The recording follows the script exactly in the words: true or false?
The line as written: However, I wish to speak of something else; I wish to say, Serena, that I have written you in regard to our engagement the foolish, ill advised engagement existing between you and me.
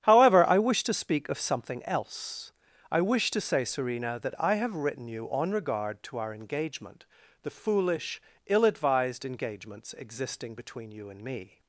false